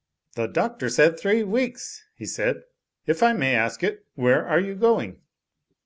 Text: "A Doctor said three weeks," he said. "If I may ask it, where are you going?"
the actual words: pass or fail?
fail